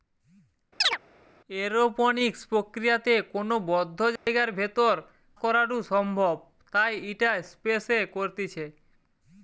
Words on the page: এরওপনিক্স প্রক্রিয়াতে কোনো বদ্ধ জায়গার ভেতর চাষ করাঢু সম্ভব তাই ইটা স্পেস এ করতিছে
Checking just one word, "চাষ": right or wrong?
wrong